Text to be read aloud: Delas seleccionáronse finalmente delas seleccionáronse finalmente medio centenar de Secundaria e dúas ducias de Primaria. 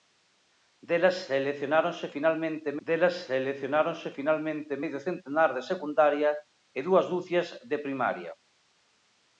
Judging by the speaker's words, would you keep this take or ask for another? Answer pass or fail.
pass